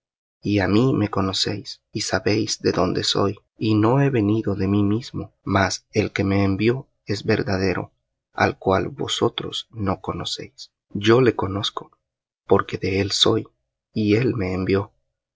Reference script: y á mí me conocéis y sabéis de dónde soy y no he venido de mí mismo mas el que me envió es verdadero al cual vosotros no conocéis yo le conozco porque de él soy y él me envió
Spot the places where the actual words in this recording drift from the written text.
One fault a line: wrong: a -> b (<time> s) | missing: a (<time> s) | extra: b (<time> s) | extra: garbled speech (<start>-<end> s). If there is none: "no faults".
no faults